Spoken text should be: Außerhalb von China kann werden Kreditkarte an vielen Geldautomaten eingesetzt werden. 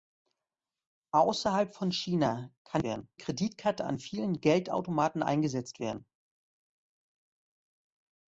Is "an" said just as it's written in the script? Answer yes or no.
yes